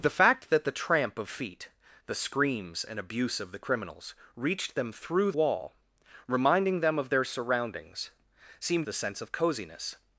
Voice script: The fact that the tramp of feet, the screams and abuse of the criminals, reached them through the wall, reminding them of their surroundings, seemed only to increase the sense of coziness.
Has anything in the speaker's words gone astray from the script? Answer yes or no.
yes